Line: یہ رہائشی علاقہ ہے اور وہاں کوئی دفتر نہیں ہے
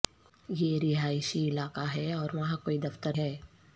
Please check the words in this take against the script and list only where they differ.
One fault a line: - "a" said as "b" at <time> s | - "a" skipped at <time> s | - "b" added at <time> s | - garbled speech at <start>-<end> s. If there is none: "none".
- "نہیں" skipped at 3.2 s